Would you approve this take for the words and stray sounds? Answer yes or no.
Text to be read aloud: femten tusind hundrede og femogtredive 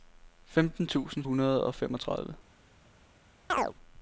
no